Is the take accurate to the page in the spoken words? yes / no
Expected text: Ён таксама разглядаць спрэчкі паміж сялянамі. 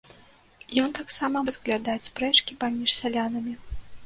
yes